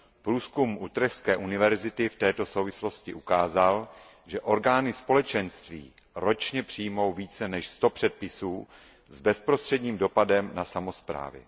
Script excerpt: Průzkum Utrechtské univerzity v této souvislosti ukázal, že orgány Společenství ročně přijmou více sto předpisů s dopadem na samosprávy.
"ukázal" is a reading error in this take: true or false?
false